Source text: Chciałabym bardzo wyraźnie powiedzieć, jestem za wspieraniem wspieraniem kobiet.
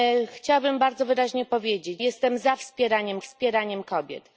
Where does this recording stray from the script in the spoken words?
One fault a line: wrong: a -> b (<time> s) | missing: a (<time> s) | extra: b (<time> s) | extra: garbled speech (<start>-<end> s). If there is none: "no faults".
no faults